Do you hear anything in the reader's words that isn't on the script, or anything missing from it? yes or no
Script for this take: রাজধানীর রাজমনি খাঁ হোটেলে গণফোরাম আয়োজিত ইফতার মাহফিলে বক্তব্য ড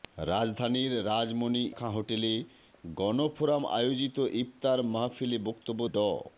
no